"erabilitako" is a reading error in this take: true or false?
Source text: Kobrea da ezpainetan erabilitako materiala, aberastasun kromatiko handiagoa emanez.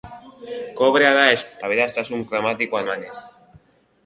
true